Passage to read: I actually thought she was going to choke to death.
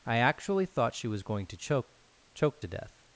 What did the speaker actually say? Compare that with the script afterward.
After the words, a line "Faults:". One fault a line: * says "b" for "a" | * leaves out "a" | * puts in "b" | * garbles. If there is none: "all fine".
I actually thought she was going to choke choke to death.
Faults:
* puts in "choke"